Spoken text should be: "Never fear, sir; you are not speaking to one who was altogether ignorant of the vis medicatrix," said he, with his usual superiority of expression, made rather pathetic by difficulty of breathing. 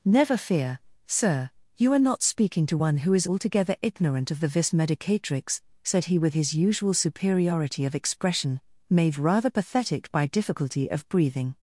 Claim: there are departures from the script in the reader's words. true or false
true